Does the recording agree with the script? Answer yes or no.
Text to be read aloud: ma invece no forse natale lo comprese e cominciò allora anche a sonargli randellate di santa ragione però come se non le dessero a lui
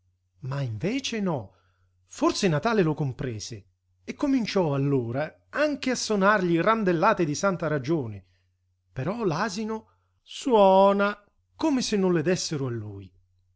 no